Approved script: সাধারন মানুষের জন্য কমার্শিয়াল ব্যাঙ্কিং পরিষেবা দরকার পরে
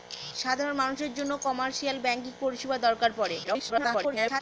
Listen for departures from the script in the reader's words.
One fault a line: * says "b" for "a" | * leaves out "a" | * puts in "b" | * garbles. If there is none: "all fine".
* garbles